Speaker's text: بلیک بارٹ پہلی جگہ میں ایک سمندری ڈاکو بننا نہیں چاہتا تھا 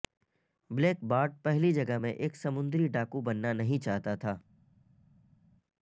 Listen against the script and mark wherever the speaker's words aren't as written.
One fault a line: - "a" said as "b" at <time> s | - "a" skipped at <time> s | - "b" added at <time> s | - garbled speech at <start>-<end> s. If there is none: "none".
none